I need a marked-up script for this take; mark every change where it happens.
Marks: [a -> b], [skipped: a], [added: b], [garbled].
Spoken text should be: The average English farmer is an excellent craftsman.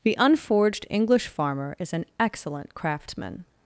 The [average -> unforged] English farmer is an excellent craftsman.